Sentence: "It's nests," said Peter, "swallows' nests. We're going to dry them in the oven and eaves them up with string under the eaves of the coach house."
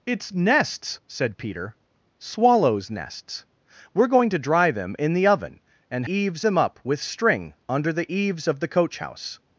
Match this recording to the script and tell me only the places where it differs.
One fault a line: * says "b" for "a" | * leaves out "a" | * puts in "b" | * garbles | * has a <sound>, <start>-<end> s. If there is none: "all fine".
all fine